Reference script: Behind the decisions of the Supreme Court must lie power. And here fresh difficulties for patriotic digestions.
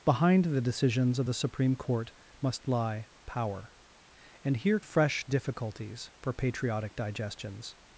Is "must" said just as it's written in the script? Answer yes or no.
yes